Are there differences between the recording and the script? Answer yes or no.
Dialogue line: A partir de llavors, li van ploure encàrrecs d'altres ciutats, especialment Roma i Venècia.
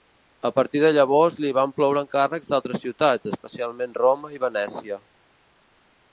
no